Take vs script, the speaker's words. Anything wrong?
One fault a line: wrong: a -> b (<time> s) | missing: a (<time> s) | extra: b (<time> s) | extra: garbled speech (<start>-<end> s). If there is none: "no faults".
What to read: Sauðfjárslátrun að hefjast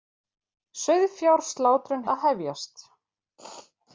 no faults